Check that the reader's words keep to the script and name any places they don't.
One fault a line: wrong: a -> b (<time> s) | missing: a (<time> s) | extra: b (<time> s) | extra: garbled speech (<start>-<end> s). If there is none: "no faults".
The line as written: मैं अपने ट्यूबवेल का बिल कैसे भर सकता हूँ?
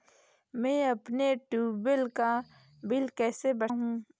missing: सकता (3.7 s)